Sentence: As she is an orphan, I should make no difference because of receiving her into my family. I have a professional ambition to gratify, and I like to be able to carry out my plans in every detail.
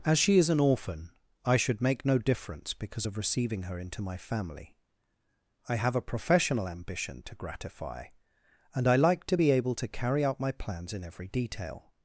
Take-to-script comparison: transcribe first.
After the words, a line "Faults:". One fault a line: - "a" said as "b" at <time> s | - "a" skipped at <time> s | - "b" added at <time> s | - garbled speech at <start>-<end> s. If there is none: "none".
As she is an orphan, I should make no difference because of receiving her into my family. I have a professional ambition to gratify, and I like to be able to carry out my plans in every detail.
Faults:
none